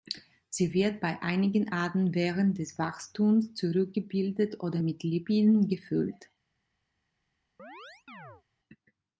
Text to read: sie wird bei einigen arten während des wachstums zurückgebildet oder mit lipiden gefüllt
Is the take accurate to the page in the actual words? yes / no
yes